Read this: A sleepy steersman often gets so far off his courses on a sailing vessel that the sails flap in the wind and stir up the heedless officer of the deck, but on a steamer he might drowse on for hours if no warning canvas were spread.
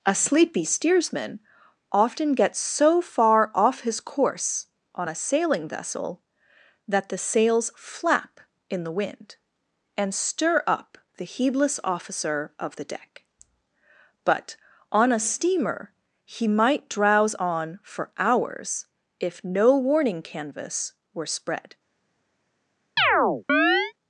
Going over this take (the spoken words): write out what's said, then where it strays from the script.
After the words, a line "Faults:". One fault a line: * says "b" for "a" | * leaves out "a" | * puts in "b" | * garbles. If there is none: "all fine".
A sleepy steersman often gets so far off his course on a sailing vessel that the sails flap in the wind and stir up the heedless officer of the deck, but on a steamer he might drowse on for hours if no warning canvas were spread.
Faults:
* says "course" for "courses"